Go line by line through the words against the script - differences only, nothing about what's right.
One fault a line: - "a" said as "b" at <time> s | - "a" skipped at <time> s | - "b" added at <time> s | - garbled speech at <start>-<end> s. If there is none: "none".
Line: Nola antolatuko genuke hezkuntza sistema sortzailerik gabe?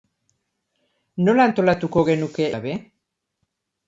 - "hezkuntza sistema sortzailerik" skipped at 2.5 s